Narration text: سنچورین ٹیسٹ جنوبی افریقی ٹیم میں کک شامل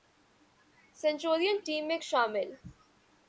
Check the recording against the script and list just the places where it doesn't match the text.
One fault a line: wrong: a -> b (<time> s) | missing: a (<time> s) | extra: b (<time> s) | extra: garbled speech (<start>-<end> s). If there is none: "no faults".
missing: ٹیسٹ جنوبی افریقی (1.6 s)
missing: کک (2.0 s)